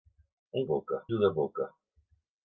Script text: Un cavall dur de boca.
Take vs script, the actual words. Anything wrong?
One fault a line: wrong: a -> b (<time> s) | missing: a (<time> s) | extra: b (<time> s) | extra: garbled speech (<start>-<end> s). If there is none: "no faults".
wrong: cavall -> boca (0.7 s)